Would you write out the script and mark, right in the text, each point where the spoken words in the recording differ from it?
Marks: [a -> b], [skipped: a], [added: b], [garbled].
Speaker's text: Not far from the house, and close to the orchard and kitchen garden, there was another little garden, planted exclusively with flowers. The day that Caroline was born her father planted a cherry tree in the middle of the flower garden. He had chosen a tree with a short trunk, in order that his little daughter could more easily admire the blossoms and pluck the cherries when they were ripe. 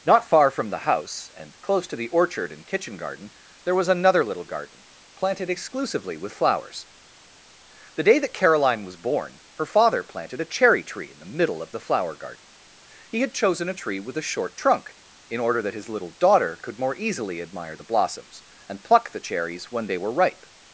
Not far from the house, and close to the orchard and kitchen garden, there was another little garden, planted exclusively with flowers. The day that Caroline was born her father planted a cherry tree in the middle of the flower garden. He had chosen a tree with a short trunk, in order that his little daughter could more easily admire the blossoms and pluck the cherries when they were ripe.